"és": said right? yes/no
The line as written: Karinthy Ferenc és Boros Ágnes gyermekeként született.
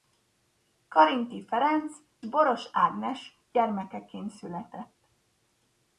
no